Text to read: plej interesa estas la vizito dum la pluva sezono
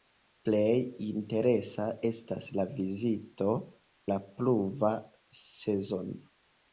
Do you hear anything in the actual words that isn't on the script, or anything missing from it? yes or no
yes